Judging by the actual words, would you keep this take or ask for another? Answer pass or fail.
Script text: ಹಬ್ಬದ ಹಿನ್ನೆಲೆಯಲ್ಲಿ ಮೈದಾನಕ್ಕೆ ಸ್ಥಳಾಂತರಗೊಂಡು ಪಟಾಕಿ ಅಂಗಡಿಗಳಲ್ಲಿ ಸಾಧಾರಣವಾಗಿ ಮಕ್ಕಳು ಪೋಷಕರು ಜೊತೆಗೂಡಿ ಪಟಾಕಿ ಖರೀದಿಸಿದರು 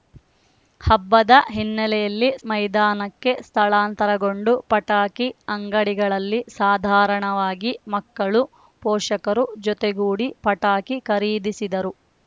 pass